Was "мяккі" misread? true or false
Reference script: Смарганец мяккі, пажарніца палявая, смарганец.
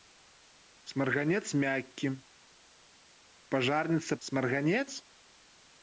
false